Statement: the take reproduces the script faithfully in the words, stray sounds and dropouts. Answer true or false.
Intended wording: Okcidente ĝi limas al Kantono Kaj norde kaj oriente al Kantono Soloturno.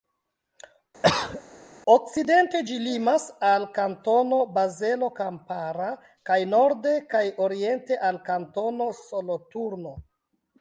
false